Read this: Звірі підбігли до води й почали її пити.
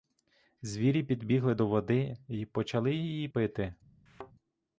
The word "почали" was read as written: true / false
true